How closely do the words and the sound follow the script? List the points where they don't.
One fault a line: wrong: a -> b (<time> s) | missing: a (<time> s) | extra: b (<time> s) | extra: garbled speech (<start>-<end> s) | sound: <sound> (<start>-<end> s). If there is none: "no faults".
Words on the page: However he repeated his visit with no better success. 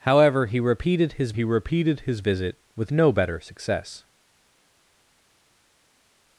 extra: he repeated his (1.3 s)